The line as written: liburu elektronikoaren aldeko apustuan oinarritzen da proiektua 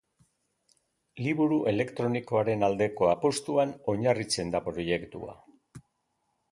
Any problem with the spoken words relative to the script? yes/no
no